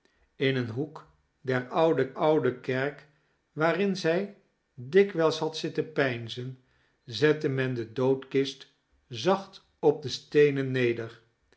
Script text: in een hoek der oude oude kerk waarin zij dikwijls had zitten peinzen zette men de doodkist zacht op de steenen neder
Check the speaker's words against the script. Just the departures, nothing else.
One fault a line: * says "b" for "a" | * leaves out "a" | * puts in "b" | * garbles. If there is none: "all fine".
all fine